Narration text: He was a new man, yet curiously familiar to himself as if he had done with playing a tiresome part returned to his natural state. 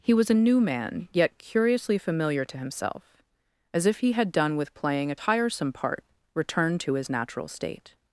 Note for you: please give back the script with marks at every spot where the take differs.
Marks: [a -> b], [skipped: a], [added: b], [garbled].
He was a new man, yet curiously familiar to himself as if he had done with playing a tiresome part returned to his natural state.